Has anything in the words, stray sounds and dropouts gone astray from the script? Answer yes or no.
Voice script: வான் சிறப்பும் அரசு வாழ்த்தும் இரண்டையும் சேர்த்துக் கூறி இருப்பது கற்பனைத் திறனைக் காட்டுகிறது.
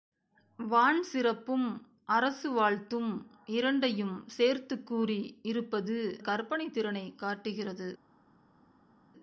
no